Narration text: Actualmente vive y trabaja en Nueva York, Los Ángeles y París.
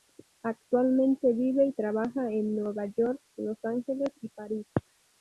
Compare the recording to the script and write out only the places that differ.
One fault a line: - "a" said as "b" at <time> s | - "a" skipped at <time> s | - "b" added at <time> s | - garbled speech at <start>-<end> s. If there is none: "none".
none